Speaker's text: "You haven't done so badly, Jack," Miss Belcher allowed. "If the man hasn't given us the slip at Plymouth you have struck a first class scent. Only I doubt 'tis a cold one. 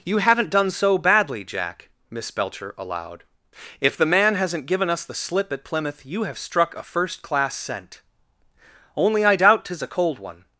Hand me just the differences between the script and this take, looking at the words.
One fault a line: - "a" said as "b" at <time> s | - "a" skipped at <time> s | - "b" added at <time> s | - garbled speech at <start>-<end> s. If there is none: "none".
none